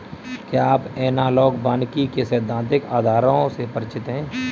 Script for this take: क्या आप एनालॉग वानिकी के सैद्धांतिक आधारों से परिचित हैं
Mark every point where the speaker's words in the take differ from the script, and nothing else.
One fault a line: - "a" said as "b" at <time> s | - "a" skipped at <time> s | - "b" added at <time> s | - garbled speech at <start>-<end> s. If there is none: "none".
none